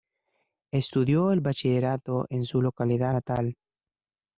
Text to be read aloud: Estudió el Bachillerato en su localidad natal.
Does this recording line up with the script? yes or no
yes